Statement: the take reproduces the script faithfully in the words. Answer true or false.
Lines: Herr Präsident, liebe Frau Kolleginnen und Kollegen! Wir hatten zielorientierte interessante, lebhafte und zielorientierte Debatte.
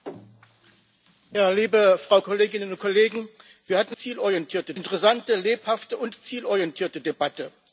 true